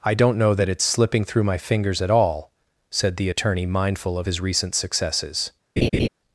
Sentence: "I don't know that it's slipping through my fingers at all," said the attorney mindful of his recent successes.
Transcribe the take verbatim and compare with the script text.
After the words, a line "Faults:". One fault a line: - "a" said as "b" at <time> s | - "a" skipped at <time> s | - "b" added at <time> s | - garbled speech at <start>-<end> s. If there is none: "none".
"I don't know that it's slipping through my fingers at all," said the attorney mindful of his recent successes.
Faults:
none